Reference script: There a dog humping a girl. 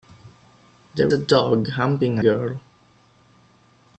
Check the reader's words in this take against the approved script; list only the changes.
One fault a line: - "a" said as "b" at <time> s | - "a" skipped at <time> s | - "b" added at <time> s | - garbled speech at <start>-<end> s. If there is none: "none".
none